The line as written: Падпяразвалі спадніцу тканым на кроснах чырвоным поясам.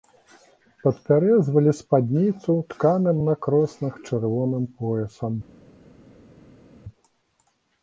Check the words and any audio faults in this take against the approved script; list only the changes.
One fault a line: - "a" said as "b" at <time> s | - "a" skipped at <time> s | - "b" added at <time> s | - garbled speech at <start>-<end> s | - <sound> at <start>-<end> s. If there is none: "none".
none